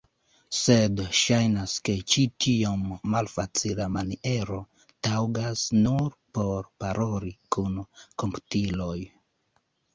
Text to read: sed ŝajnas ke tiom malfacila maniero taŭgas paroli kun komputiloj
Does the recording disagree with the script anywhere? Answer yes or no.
yes